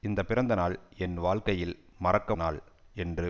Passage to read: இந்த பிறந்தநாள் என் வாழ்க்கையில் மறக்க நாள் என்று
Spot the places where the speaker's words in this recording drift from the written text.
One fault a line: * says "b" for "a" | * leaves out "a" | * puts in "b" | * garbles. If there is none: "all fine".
all fine